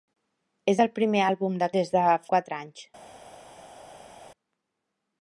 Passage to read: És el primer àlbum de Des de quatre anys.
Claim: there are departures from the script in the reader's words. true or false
false